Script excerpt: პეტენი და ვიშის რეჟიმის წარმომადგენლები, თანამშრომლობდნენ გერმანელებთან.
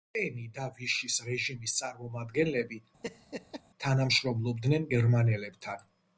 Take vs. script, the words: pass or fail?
pass